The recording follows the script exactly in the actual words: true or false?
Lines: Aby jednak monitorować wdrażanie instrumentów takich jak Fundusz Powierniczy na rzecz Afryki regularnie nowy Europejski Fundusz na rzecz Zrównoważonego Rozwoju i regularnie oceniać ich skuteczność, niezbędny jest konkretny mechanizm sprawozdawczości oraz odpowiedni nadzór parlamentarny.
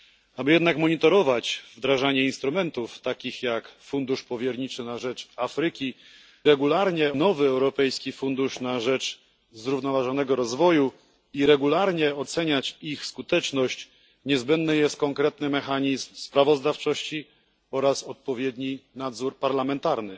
true